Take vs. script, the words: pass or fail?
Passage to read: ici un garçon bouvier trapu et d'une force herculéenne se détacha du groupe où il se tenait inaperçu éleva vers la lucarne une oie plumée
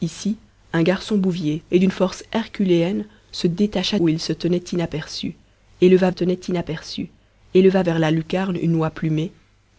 fail